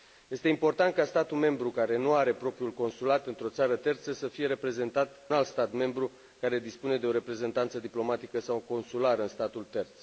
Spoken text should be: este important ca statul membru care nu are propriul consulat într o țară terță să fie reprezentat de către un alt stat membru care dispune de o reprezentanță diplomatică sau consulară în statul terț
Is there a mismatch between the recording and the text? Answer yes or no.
yes